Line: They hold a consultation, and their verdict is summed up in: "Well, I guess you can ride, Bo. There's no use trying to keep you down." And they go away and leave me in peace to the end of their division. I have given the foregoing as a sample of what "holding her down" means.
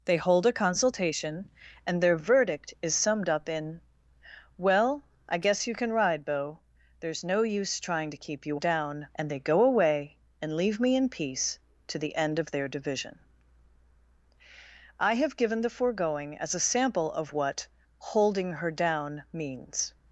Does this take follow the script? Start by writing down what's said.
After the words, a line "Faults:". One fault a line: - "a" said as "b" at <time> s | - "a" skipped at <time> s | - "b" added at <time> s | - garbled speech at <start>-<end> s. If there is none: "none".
They hold a consultation, and their verdict is summed up in: "Well, I guess you can ride, Bo. There's no use trying to keep you down." And they go away and leave me in peace to the end of their division. I have given the foregoing as a sample of what "holding her down" means.
Faults:
none